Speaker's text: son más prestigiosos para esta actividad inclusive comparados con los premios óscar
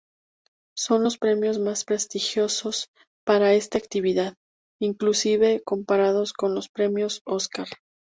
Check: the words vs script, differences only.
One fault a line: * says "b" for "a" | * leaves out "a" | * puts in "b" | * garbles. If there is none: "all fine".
* puts in "los premios"